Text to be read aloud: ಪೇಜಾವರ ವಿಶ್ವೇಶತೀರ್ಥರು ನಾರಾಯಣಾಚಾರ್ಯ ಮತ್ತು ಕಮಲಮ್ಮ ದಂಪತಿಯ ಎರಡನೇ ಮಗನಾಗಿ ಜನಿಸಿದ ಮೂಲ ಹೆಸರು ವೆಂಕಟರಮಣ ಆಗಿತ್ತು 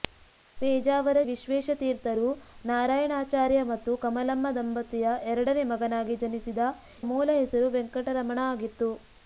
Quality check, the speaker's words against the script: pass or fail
pass